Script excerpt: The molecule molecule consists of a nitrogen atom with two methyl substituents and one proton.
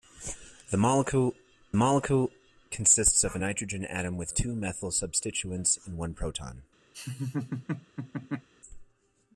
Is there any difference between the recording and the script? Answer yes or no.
no